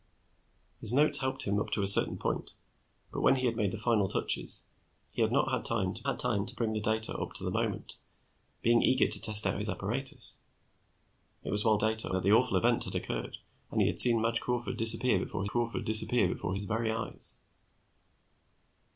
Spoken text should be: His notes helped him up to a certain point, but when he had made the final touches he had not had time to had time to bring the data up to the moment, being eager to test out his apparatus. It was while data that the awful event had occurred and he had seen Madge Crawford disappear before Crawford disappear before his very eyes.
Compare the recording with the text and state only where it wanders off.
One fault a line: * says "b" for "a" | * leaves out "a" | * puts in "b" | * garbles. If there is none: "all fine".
all fine